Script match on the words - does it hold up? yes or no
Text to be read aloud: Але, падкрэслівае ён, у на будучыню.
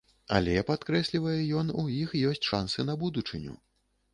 no